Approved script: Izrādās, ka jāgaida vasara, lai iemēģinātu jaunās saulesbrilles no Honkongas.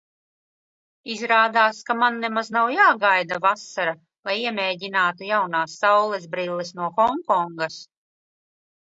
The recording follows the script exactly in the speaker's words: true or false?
false